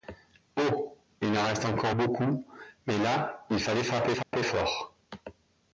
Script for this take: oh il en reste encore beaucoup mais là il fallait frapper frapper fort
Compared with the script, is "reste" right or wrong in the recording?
right